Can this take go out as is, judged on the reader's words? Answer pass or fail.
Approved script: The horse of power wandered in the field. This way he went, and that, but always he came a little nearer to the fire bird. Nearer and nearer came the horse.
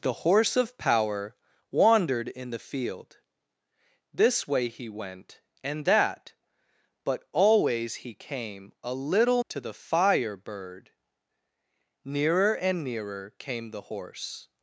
fail